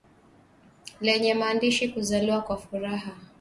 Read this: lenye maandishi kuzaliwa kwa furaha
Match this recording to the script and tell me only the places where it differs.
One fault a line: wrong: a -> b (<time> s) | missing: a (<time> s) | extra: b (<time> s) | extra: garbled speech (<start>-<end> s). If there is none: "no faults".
no faults